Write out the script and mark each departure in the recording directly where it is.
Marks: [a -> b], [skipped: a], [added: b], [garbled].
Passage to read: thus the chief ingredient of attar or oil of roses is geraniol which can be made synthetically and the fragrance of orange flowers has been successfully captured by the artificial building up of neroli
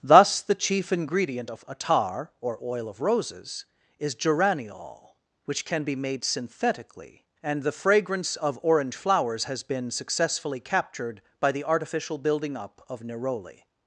thus the chief ingredient of attar or oil of roses is geraniol which can be made synthetically and the fragrance of orange flowers has been successfully captured by the artificial building up of neroli